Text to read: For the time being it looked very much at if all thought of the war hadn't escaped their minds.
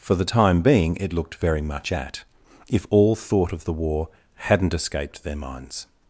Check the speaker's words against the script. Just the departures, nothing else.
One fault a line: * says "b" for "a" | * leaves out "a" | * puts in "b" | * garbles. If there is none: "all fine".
all fine